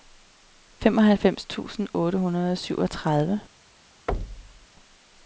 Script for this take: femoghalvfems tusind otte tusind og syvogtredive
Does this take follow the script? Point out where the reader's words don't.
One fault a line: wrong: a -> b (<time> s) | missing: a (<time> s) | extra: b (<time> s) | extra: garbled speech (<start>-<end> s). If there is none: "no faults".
wrong: tusind -> hundrede (2.2 s)